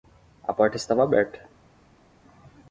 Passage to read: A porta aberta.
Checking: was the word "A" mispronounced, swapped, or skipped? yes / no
no